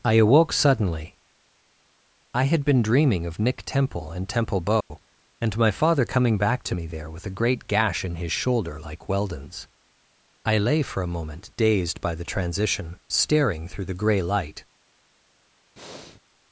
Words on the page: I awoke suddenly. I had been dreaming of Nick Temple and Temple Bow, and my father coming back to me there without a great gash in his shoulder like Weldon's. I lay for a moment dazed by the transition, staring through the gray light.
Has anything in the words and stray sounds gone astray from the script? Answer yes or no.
yes